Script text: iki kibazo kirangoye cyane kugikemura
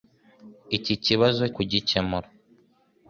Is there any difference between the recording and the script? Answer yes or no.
yes